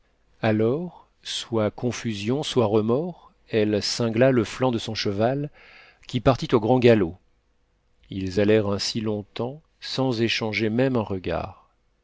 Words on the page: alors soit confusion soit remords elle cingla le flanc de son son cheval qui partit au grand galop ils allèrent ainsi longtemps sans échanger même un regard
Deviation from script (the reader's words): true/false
true